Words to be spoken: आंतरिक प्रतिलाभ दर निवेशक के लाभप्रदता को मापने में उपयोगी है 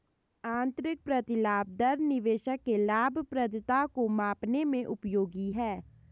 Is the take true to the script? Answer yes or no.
yes